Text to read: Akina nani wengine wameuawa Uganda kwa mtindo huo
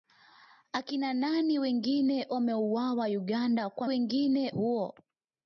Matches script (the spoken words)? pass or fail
fail